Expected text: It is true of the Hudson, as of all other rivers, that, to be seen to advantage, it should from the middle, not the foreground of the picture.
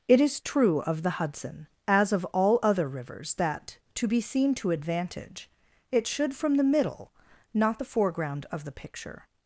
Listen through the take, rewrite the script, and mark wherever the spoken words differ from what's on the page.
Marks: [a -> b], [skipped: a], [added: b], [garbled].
It is true of the Hudson, as of all other rivers, that, to be seen to advantage, it should from the middle, not the foreground of the picture.